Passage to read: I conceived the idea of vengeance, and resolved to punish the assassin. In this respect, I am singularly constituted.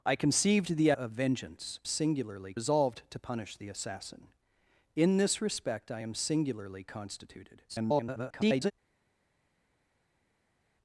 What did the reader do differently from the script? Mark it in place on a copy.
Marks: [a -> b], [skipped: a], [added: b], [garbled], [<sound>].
I conceived the [skipped: idea] of vengeance, [and -> singularly] resolved to punish the assassin. In this respect, I am singularly constituted. [garbled]